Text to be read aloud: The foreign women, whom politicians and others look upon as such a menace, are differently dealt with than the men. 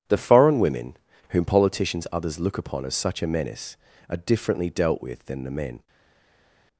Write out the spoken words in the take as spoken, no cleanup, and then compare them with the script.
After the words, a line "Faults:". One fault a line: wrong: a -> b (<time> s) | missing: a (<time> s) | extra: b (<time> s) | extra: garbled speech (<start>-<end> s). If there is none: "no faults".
The foreign women, whom politicians others look upon as such a menace, are differently dealt with than the men.
Faults:
missing: and (2.1 s)